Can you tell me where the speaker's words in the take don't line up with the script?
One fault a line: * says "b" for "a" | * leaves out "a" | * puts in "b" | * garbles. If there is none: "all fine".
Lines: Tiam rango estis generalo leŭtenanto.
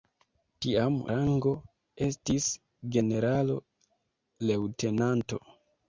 all fine